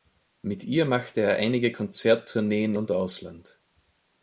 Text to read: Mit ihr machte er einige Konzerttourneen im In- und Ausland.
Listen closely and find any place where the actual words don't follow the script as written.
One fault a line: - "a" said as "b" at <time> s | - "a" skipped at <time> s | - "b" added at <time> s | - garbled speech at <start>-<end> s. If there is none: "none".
- "im In" skipped at 2.7 s